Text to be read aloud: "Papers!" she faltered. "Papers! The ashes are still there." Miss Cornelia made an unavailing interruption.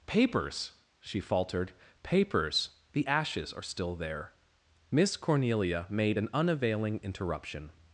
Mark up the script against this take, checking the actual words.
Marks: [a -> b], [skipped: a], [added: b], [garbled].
"Papers!" she faltered. "Papers! The ashes are still there." Miss Cornelia made an unavailing interruption.